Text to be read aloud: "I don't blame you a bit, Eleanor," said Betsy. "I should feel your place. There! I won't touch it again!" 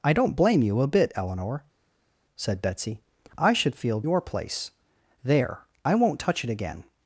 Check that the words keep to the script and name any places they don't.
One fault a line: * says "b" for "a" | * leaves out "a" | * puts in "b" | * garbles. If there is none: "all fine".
all fine